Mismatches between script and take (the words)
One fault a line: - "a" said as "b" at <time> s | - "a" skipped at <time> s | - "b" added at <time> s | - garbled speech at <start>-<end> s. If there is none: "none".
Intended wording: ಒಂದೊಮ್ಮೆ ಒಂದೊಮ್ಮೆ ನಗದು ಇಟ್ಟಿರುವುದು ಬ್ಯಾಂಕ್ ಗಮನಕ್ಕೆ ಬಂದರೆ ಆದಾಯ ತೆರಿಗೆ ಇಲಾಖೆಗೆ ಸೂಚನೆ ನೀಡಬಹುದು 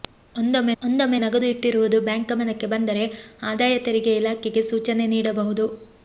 none